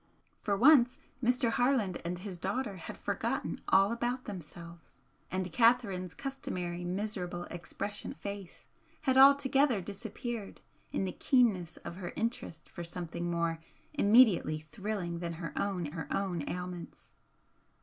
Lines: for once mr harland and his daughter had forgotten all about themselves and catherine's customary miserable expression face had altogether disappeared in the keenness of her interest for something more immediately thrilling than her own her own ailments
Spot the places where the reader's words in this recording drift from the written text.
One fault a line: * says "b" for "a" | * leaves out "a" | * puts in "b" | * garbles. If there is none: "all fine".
all fine